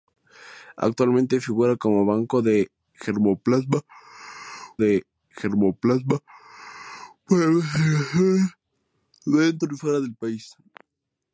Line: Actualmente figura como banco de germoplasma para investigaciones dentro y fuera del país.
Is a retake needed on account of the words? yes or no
yes